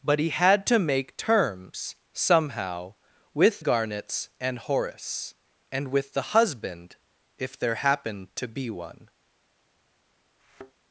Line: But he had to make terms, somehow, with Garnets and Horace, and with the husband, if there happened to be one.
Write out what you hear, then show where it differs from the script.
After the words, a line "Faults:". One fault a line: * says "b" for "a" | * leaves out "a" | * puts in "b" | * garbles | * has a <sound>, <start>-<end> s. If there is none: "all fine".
But he had to make terms, somehow, with Garnets and Horace, and with the husband, if there happened to be one.
Faults:
* has a thud, 10.4-10.7 s